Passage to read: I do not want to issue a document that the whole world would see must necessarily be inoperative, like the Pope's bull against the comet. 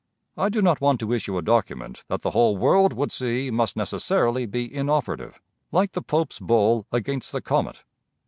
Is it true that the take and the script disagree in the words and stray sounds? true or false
false